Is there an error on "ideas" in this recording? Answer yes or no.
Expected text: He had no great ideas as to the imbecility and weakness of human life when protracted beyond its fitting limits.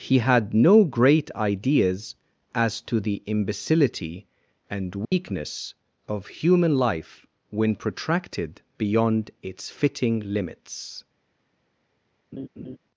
no